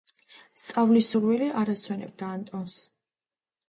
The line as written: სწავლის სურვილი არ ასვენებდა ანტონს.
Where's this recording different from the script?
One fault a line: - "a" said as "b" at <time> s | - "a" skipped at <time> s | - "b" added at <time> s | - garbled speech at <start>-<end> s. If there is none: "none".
none